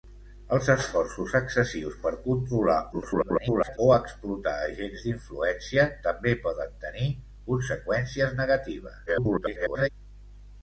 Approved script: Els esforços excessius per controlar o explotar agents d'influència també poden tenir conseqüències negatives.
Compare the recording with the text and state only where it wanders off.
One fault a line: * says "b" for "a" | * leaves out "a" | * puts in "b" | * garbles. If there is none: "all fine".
* garbles
* garbles